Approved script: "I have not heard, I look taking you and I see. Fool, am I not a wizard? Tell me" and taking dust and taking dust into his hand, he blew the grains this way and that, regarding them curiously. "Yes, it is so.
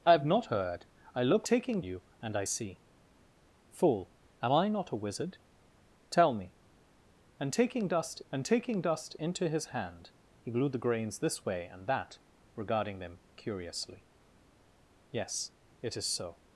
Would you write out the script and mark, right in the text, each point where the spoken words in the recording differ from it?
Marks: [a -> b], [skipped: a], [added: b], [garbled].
"I have not heard, I look taking you and I see. Fool, am I not a wizard? Tell me" and taking dust and taking dust into his hand, he blew the grains this way and that, regarding them curiously. "Yes, it is so.